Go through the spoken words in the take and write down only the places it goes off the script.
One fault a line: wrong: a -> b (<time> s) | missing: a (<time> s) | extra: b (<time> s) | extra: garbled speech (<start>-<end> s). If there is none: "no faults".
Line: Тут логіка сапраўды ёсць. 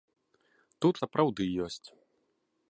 missing: логіка (0.9 s)